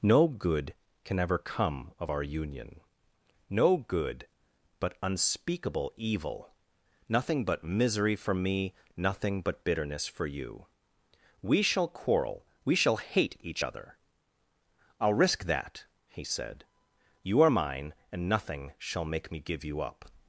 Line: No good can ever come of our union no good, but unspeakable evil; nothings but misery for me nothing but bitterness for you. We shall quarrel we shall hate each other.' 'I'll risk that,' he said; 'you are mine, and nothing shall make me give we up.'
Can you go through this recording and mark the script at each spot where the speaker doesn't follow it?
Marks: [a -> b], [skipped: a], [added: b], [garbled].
No good can ever come of our union no good, but unspeakable evil; [nothings -> nothing] but misery for me nothing but bitterness for you. We shall quarrel we shall hate each other.' 'I'll risk that,' he said; 'you are mine, and nothing shall make me give [we -> you] up.'